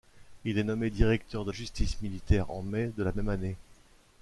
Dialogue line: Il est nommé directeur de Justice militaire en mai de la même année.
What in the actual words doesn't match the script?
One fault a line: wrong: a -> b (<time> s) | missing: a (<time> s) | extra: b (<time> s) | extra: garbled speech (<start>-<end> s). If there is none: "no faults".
no faults